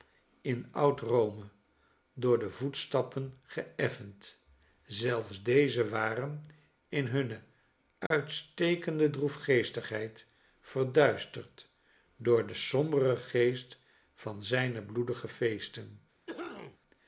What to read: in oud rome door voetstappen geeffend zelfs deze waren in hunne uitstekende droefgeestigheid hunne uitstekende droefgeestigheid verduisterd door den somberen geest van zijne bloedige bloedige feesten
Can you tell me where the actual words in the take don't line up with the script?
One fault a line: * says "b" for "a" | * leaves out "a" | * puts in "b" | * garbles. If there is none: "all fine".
* puts in "de"
* leaves out "hunne uitstekende droefgeestigheid"
* leaves out "bloedige"